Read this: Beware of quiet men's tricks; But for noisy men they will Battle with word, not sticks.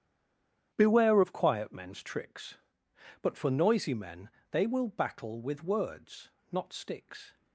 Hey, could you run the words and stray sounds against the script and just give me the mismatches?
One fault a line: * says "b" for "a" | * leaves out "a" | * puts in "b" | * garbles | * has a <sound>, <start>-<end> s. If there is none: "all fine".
* says "words" for "word"